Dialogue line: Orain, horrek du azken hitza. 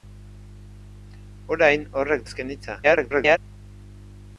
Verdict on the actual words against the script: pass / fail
fail